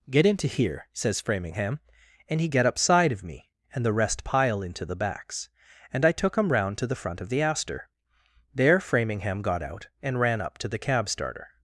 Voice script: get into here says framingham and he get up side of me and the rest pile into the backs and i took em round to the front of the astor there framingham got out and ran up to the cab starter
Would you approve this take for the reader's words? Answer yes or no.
yes